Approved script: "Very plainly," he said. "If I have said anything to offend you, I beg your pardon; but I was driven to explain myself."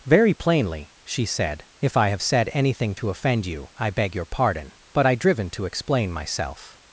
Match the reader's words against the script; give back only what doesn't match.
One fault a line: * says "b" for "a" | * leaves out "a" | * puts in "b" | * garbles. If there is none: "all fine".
* says "she" for "he"
* leaves out "was"